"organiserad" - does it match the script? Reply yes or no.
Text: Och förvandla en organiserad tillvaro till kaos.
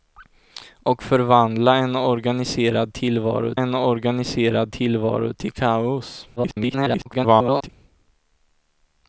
yes